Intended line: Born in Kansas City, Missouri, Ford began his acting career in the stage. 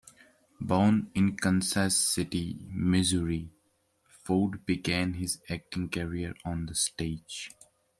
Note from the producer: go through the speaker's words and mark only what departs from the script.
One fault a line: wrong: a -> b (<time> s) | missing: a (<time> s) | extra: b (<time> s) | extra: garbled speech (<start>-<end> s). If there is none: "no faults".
wrong: in -> on (6.4 s)